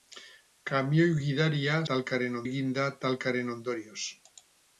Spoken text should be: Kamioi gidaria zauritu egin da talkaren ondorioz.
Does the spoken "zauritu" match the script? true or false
false